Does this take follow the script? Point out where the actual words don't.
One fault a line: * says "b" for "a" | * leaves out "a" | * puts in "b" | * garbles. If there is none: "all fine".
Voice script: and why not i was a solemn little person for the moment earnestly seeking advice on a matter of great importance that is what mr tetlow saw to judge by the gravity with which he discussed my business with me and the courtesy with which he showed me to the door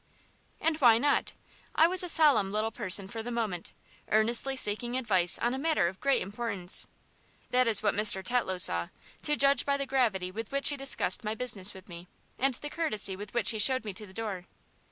all fine